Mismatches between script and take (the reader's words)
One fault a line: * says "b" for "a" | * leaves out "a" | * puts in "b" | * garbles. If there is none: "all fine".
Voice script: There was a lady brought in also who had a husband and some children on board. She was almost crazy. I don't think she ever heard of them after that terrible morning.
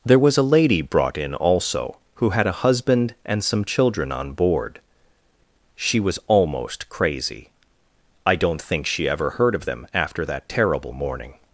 all fine